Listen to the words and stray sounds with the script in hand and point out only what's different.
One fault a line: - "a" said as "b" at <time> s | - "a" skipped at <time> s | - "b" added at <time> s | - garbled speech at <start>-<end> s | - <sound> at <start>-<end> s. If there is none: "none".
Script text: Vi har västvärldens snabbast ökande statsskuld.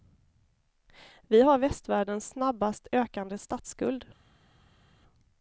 none